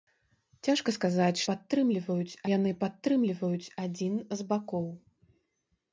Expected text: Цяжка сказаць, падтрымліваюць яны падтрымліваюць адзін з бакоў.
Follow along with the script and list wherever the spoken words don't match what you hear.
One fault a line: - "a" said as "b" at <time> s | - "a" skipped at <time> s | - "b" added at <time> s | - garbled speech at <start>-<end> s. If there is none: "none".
none